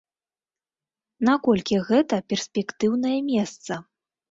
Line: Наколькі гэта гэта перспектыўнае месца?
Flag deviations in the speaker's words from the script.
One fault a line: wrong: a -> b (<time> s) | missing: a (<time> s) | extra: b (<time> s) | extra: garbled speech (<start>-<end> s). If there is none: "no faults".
missing: гэта (2.1 s)